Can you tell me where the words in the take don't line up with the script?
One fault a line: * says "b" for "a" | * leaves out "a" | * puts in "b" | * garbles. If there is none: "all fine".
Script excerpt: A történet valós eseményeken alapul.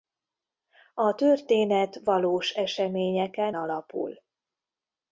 all fine